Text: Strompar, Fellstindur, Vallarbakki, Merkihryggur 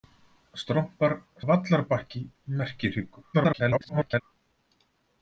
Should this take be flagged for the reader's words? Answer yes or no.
yes